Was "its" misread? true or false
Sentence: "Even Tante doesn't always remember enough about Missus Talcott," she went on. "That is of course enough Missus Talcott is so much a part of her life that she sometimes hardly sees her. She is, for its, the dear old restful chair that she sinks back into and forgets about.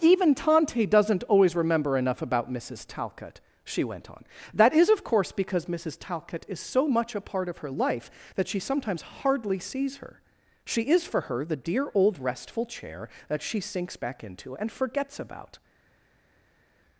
true